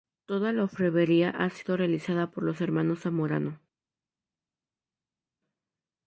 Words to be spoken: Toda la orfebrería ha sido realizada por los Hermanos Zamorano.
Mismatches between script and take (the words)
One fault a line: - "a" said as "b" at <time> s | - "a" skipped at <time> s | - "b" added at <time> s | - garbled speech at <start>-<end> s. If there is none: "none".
none